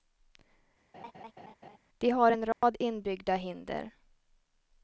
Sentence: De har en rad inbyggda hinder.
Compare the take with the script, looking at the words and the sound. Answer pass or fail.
fail